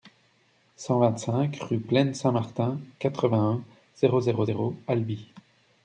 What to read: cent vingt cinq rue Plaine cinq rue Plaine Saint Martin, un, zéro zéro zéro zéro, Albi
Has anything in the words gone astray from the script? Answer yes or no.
yes